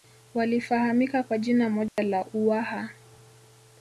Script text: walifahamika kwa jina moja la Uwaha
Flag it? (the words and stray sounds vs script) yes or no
yes